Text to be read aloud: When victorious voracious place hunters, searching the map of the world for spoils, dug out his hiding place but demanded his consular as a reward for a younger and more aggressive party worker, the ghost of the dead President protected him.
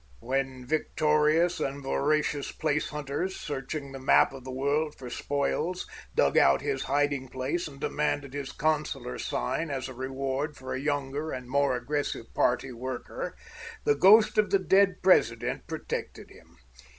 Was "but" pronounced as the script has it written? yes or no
no